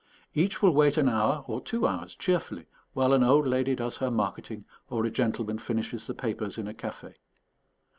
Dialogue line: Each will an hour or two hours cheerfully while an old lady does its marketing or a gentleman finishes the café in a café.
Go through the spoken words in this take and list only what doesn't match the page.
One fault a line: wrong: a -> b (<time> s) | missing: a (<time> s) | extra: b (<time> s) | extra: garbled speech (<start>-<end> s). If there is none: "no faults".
extra: wait (0.7 s)
wrong: its -> her (4.0 s)
wrong: café -> papers (6.2 s)